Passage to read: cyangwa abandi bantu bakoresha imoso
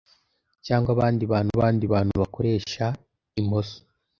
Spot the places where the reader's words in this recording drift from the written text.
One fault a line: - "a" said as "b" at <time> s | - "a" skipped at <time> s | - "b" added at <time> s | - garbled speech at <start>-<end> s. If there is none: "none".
- "abandi bantu" added at 1.5 s